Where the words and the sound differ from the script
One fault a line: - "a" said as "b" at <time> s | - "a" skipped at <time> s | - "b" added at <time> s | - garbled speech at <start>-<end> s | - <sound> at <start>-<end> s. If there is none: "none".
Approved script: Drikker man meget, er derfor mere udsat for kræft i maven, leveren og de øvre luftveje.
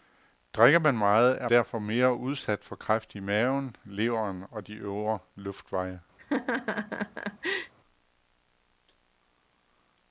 - laugh at 6.2-7.7 s